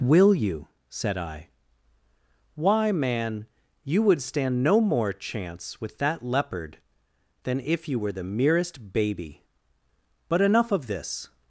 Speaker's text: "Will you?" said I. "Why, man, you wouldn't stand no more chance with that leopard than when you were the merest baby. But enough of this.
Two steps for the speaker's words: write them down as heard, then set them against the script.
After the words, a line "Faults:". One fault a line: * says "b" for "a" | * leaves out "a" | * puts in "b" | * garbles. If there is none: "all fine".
"Will you?" said I. "Why, man, you would stand no more chance with that leopard than if you were the merest baby. But enough of this.
Faults:
* says "would" for "wouldn't"
* says "if" for "when"